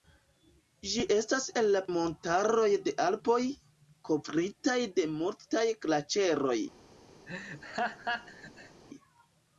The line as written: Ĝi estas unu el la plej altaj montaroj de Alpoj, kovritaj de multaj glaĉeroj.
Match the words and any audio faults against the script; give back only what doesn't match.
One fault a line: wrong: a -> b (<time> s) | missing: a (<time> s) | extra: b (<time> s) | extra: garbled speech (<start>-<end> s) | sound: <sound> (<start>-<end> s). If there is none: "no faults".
missing: unu (1.4 s)
missing: plej altaj (1.8 s)
sound: laugh (7.3-8.8 s)